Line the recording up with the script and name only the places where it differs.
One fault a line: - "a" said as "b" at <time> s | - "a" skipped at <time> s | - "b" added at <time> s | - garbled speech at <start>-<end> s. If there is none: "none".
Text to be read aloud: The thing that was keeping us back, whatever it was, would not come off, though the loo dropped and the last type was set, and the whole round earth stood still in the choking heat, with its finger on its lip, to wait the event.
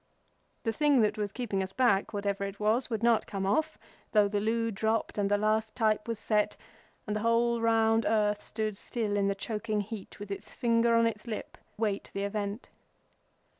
- "to" skipped at 11.6 s